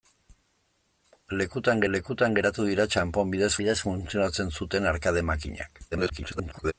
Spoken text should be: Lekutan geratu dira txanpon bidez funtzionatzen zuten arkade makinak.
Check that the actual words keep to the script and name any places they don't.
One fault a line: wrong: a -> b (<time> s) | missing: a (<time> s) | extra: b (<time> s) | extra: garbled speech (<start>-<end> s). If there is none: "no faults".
extra: lekutan (1.9 s)
extra: bidez (3.6 s)
extra: garbled speech (5.9-6.7 s)